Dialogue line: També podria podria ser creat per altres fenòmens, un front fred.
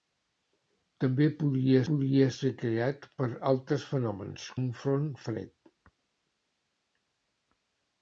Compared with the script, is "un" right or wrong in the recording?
right